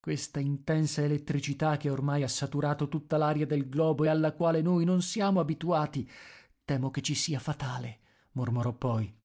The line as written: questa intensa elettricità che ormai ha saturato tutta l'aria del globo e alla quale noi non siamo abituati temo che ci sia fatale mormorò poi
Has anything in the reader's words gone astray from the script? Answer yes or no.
no